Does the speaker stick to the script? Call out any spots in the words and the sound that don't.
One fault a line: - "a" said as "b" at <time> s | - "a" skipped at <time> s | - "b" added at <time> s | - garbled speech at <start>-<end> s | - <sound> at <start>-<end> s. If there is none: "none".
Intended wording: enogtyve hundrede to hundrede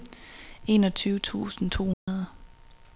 - "hundrede" said as "tusind" at 1.2 s
- dropout at 1.9-2.1 s